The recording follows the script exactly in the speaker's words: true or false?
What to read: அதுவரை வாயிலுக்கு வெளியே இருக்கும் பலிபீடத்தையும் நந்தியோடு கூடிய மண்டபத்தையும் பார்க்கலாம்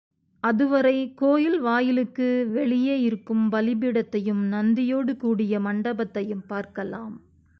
false